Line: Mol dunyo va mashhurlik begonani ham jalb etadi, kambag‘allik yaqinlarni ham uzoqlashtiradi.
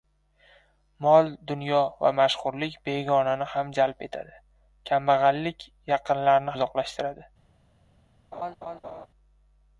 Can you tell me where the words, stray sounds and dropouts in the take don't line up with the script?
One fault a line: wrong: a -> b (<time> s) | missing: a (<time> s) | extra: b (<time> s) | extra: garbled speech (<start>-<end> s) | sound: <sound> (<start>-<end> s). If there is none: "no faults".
missing: ham (6.6 s)
sound: laugh (8.3-9.1 s)